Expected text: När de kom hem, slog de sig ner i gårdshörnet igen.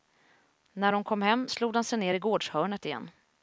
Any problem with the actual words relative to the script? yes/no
no